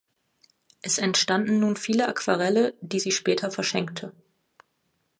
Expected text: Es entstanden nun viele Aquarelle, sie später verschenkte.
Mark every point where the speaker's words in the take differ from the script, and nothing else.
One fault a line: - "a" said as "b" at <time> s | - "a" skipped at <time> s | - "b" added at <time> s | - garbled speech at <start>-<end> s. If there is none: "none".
- "die" added at 2.8 s